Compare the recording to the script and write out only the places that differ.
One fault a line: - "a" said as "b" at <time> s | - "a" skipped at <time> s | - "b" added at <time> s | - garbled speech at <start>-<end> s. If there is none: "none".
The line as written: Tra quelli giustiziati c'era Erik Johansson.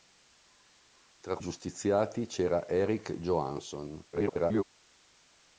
- "quelli" skipped at 1.4 s
- garbled speech at 4.1-4.6 s